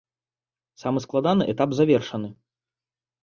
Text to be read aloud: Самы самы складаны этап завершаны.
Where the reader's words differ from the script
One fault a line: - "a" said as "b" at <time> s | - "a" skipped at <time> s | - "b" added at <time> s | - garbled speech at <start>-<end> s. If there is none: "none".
- "самы" skipped at 1.0 s